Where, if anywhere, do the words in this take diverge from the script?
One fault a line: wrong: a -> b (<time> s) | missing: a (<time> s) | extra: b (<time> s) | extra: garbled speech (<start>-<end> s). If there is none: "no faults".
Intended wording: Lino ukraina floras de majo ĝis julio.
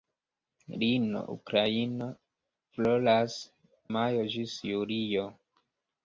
missing: de (3.4 s)